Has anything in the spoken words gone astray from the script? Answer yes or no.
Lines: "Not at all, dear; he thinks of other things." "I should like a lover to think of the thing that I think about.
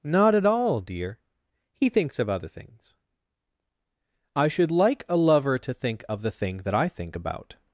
no